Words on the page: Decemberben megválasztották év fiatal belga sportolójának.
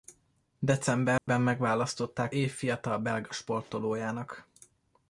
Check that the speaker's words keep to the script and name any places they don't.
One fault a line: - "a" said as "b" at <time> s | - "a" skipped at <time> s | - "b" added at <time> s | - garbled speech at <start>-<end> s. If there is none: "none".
none